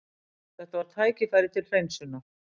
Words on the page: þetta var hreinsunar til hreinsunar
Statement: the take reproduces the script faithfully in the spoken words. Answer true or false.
false